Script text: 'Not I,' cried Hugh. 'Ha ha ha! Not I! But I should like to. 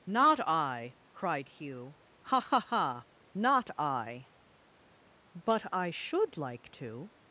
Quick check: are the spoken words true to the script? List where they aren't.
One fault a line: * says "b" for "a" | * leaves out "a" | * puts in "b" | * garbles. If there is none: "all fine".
all fine